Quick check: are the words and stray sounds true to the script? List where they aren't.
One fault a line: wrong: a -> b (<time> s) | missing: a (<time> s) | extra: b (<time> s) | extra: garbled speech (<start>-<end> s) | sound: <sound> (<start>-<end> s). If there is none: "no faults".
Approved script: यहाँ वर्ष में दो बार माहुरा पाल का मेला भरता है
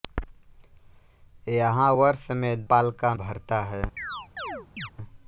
missing: दो बार माहुरा (2.7 s)
missing: मेला (3.1 s)
sound: chirp (4.0-4.9 s)